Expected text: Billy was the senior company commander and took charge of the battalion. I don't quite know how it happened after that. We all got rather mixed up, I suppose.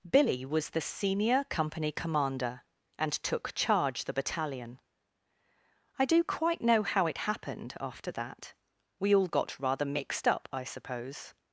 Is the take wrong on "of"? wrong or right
wrong